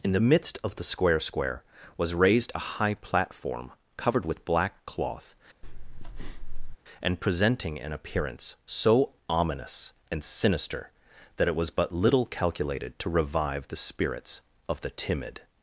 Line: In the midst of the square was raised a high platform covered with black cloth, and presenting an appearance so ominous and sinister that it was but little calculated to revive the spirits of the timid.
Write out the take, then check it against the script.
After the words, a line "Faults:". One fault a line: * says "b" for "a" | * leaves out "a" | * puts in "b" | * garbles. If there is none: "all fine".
In the midst of the square square was raised a high platform covered with black cloth, and presenting an appearance so ominous and sinister that it was but little calculated to revive the spirits of the timid.
Faults:
* puts in "square"